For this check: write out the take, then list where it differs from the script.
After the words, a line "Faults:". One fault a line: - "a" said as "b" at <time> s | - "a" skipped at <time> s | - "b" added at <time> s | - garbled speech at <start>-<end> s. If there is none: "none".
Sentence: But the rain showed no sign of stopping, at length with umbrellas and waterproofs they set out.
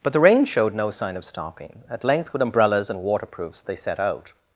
But the rain showed no sign of stopping, at length with umbrellas and waterproofs they set out.
Faults:
none